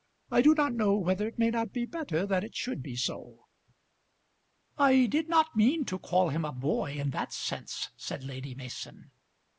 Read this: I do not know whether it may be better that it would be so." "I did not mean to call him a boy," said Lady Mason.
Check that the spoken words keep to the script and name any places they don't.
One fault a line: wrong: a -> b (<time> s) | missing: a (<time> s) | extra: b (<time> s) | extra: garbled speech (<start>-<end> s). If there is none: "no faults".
extra: not (1.5 s)
wrong: would -> should (2.5 s)
extra: in that sense (6.9 s)